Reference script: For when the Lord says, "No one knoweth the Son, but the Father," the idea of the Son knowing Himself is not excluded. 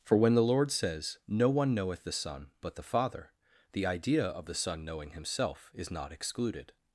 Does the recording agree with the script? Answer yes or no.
yes